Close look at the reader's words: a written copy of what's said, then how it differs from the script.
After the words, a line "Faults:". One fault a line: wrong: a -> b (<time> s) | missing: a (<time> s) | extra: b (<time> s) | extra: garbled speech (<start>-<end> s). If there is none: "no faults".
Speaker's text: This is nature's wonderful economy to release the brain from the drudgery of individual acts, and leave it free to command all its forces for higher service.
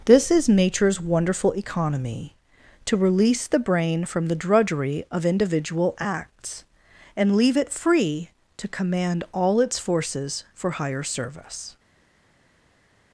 This is nature's wonderful economy to release the brain from the drudgery of individual acts, and leave it free to command all its forces for higher service.
Faults:
no faults